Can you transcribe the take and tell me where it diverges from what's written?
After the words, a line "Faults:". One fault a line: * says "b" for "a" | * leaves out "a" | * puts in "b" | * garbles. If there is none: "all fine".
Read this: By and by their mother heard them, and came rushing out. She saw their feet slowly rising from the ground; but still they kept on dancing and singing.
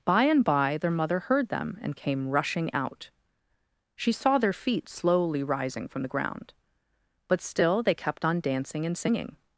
By and by their mother heard them, and came rushing out. She saw their feet slowly rising from the ground; but still they kept on dancing and singing.
Faults:
all fine